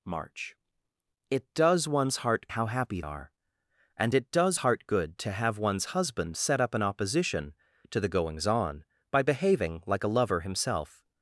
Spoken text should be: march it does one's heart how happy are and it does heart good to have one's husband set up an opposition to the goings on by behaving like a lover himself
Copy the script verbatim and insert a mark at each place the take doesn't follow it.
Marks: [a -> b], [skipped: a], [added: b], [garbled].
march it does one's heart how happy are and it does heart good to have one's husband set up an opposition to the goings on by behaving like a lover himself